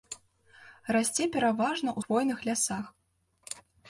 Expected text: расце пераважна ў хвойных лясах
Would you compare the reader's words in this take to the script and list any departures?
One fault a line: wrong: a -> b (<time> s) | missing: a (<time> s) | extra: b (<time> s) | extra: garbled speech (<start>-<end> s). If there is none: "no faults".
no faults